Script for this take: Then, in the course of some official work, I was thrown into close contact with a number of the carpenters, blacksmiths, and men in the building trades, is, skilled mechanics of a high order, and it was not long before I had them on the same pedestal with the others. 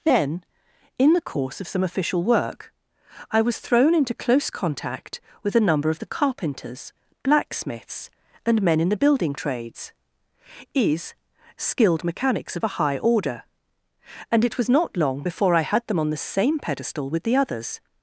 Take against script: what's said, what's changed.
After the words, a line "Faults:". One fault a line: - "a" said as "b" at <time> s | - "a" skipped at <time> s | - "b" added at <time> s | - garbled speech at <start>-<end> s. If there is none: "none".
Then, in the course of some official work, I was thrown into close contact with a number of the carpenters, blacksmiths, and men in the building trades, is, skilled mechanics of a high order, and it was not long before I had them on the same pedestal with the others.
Faults:
none